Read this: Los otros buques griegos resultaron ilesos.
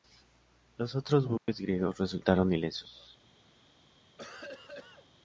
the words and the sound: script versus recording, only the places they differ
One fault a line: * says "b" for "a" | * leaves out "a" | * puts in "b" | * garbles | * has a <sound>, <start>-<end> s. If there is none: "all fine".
* has a dropout, 1.4-1.5 s
* has a cough, 4.2-5.1 s